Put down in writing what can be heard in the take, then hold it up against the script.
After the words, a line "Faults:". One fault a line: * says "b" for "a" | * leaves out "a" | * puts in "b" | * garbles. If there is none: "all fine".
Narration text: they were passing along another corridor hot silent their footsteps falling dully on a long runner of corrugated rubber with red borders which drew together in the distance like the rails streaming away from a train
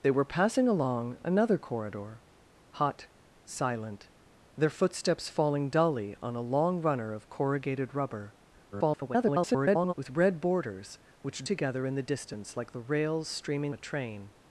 they were passing along another corridor hot silent their footsteps falling dully on a long runner of corrugated rubber [garbled] with red borders which together in the distance like the rails streaming a train
Faults:
* garbles
* leaves out "drew"
* leaves out "away from"